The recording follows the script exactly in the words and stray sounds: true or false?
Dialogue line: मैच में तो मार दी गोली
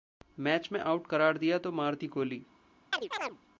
false